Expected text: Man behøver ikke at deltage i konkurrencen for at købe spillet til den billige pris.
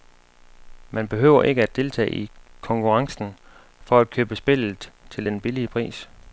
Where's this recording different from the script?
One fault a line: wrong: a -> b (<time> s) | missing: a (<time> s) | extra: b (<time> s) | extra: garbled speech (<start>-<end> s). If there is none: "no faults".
no faults